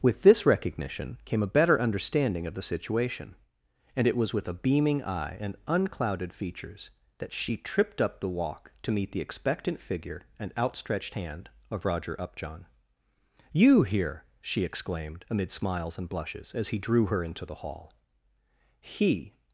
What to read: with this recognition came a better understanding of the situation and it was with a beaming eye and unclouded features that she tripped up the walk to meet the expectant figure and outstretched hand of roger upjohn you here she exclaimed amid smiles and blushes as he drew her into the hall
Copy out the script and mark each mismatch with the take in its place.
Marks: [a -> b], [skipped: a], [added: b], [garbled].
with this recognition came a better understanding of the situation and it was with a beaming eye and unclouded features that she tripped up the walk to meet the expectant figure and outstretched hand of roger upjohn you here she exclaimed amid smiles and blushes as he drew her into the hall [added: he]